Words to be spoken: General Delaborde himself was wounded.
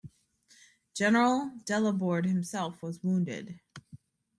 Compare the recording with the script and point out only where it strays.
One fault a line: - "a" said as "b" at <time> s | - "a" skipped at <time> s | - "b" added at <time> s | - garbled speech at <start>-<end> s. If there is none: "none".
none